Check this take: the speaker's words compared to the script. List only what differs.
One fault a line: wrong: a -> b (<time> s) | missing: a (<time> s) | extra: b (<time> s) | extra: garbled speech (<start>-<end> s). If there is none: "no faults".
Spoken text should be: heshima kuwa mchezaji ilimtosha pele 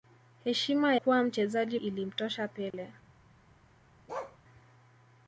no faults